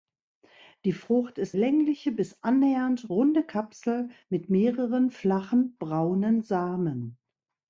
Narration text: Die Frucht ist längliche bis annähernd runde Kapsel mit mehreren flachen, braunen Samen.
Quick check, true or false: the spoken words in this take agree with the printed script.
true